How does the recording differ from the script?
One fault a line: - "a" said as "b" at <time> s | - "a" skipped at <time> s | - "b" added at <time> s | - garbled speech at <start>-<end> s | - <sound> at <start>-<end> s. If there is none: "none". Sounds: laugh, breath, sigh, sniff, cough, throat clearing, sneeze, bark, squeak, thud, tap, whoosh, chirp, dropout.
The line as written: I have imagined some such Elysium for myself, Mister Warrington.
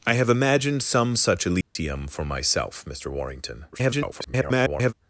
- dropout at 1.6-1.8 s
- garbled speech at 3.7-4.9 s